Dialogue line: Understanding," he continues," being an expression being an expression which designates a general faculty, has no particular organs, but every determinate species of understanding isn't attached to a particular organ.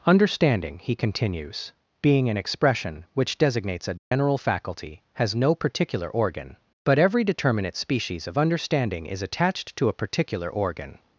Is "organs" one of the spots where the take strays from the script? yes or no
yes